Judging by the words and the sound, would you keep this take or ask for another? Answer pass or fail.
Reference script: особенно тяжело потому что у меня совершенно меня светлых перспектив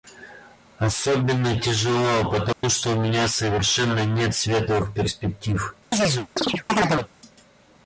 fail